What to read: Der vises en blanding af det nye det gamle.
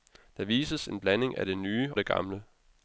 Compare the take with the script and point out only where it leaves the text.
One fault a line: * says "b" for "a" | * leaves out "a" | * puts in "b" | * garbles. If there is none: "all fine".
all fine